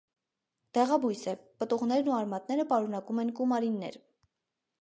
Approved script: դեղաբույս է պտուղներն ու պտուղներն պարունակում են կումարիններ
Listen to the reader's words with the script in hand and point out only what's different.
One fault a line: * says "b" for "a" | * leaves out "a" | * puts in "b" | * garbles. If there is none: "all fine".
* says "արմատները" for "պտուղներն"